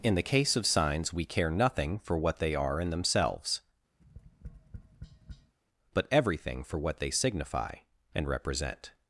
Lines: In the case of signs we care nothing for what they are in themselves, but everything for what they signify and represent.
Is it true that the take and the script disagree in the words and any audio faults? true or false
true